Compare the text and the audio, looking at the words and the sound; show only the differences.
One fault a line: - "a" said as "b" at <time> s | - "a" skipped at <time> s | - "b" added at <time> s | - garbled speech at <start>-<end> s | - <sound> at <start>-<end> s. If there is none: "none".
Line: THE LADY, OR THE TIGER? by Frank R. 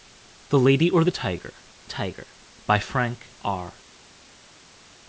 - "TIGER" added at 1.9 s